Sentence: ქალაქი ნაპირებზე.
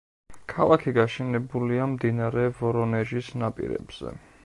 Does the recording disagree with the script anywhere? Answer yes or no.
yes